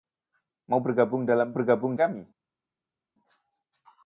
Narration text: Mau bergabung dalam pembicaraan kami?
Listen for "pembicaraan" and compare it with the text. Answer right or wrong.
wrong